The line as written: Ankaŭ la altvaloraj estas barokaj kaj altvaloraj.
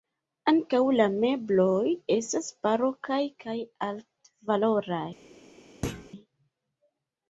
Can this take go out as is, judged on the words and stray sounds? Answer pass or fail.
fail